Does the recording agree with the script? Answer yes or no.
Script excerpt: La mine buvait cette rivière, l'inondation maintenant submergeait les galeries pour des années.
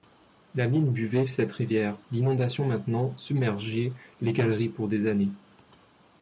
yes